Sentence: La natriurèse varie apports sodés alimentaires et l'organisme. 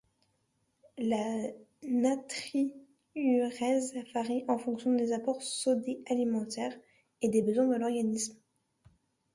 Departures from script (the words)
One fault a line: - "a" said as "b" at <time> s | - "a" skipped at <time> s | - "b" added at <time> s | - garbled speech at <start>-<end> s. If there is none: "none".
- "en fonction des" added at 4.5 s
- "des besoins de" added at 7.3 s